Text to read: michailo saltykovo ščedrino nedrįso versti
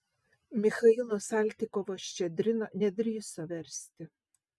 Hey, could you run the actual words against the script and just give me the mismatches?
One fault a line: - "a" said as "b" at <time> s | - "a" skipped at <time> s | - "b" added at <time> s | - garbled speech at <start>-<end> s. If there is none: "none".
none